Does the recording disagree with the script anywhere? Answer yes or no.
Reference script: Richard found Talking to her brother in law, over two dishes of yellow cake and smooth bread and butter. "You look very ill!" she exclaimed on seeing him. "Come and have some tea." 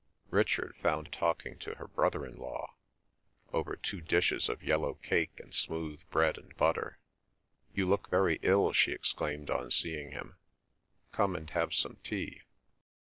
no